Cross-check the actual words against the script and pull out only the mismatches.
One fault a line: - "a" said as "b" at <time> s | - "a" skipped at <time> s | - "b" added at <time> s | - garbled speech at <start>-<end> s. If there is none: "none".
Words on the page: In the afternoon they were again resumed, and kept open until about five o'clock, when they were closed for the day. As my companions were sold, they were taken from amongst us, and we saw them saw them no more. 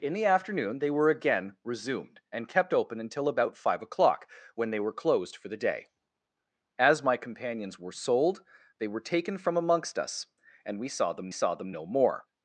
none